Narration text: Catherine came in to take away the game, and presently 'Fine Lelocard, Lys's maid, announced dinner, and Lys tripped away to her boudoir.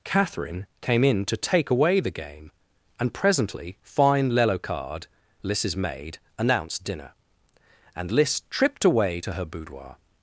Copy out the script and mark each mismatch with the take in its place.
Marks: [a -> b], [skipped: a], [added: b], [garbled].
Catherine came in to take away the game, and presently 'Fine Lelocard, Lys's maid, announced dinner, and Lys tripped away to her boudoir.